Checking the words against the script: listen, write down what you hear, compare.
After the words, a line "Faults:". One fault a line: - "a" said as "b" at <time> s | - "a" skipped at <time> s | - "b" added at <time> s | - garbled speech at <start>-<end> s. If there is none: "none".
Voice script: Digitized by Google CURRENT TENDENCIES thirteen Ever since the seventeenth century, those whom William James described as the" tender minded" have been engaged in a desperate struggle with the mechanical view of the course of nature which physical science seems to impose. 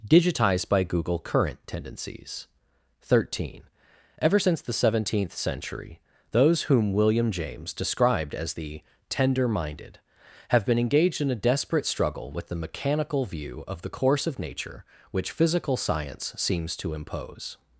Digitized by Google CURRENT TENDENCIES thirteen Ever since the seventeenth century, those whom William James described as the" tender minded" have been engaged in a desperate struggle with the mechanical view of the course of nature which physical science seems to impose.
Faults:
none